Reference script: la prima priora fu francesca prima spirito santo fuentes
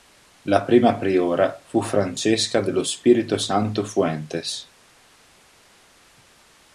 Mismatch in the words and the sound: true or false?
true